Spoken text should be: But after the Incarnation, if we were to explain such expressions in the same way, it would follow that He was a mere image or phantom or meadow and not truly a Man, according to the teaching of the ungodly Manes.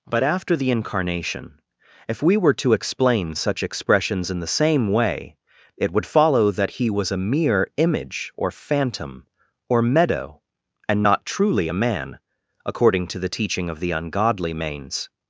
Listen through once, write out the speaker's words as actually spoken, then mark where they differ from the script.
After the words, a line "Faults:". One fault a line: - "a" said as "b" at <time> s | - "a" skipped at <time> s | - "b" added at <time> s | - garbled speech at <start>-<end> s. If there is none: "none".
But after the Incarnation, if we were to explain such expressions in the same way, it would follow that He was a mere image or phantom or meadow and not truly a Man, according to the teaching of the ungodly Manes.
Faults:
none